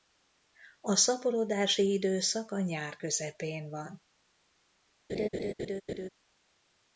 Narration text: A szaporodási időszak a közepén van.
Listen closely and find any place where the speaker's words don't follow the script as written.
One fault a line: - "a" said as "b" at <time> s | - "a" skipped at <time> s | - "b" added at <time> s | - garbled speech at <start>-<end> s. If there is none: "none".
- "nyár" added at 2.6 s